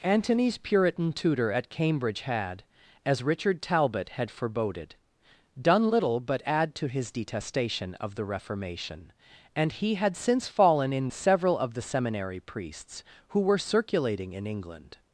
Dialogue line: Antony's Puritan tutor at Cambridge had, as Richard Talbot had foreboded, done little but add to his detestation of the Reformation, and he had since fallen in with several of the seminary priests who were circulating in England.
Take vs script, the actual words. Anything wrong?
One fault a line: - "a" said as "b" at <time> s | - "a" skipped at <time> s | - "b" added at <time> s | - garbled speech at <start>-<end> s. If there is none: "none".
- "with" skipped at 11.1 s